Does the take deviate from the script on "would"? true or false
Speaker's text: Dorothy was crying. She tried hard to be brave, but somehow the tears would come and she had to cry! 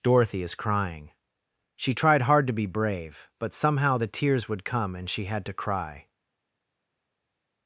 false